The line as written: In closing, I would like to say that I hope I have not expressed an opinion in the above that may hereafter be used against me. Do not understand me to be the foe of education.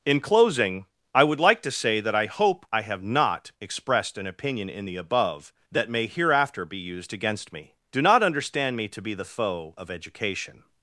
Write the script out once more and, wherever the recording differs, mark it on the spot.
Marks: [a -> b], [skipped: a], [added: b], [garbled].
In closing, I would like to say that I hope I have not expressed an opinion in the above that may hereafter be used against me. Do not understand me to be the foe of education.